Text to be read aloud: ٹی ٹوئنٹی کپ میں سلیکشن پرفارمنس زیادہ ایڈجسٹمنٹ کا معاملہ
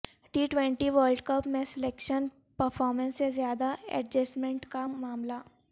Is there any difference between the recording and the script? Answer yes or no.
yes